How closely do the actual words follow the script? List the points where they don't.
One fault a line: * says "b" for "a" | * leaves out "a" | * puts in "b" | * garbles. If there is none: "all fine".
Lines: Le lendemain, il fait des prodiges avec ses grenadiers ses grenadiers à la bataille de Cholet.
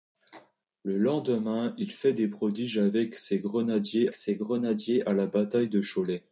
all fine